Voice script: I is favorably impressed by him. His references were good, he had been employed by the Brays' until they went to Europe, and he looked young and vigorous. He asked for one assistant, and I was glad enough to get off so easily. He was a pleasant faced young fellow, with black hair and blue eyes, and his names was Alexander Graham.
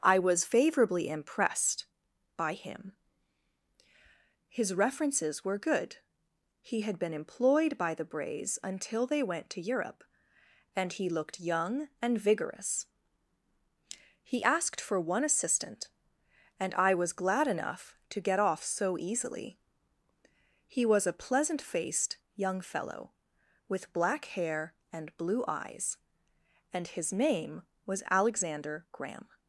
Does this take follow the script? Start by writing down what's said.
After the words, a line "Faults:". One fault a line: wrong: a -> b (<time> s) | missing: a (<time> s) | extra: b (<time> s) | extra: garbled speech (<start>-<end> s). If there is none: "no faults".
I was favorably impressed by him. His references were good, he had been employed by the Brays' until they went to Europe, and he looked young and vigorous. He asked for one assistant, and I was glad enough to get off so easily. He was a pleasant faced young fellow, with black hair and blue eyes, and his name was Alexander Graham.
Faults:
wrong: is -> was (0.2 s)
wrong: names -> name (27.1 s)